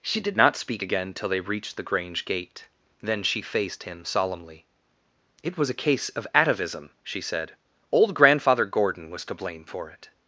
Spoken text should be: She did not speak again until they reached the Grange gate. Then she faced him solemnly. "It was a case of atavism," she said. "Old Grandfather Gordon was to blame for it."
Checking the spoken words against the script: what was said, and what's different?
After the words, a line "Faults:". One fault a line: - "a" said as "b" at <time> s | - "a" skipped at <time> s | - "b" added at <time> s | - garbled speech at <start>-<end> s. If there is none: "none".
She did not speak again till they reached the Grange gate. Then she faced him solemnly. "It was a case of atavism," she said. "Old Grandfather Gordon was to blame for it."
Faults:
- "until" said as "till" at 1.1 s